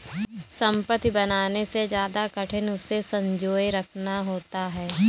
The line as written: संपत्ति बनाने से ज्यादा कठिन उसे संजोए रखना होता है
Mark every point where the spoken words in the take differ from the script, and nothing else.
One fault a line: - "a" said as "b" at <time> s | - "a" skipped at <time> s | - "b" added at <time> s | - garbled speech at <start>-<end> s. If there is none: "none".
none